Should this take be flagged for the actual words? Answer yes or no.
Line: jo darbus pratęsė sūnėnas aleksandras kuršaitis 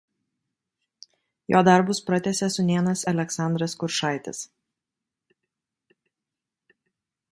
no